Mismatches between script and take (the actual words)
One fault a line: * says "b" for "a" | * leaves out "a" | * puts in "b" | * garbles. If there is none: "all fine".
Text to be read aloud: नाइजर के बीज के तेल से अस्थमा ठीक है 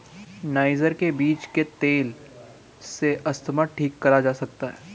* puts in "करा जा सकता"